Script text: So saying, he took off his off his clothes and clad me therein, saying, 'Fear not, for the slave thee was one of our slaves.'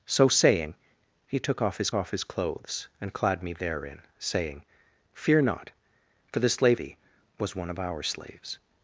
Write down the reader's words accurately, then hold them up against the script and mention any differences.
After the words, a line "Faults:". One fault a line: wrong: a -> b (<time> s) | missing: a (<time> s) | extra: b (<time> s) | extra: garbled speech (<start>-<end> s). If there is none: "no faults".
So saying, he took off his off his clothes and clad me therein, saying, 'Fear not, for the slave thee was one of our slaves.'
Faults:
no faults